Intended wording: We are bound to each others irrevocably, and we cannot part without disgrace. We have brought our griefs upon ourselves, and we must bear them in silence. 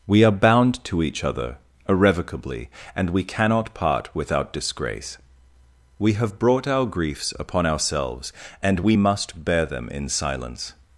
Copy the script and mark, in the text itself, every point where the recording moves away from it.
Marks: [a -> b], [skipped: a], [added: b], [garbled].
We are bound to each [others -> other] irrevocably, and we cannot part without disgrace. We have brought our griefs upon ourselves, and we must bear them in silence.